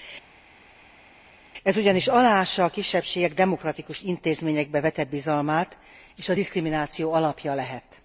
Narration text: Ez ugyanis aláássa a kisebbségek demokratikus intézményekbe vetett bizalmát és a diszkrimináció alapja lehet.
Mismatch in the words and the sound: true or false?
false